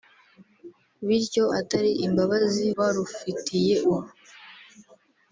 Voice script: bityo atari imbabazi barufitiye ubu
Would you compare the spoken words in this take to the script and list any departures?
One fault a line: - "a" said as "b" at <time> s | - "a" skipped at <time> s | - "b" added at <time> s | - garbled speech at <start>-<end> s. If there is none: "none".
none